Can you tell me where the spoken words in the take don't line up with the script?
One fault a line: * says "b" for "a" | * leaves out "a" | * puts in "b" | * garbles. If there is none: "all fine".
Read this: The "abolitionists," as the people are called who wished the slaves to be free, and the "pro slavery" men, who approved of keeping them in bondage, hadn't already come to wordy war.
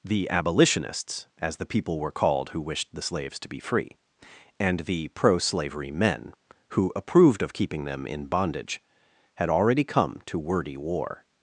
* says "were" for "are"
* says "had" for "hadn't"